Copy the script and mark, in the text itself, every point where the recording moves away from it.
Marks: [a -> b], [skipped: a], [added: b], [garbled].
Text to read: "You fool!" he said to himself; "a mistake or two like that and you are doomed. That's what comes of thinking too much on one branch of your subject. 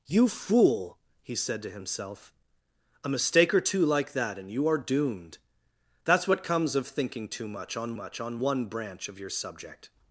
"You fool!" he said to himself; "a mistake or two like that and you are doomed. That's what comes of thinking too much on [added: much on] one branch of your subject.